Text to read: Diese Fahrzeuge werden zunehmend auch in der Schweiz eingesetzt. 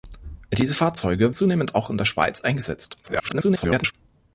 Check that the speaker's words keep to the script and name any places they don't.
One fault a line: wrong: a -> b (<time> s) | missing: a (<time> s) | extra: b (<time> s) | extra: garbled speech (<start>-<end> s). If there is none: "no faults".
missing: werden (1.4 s)
extra: garbled speech (3.0-3.9 s)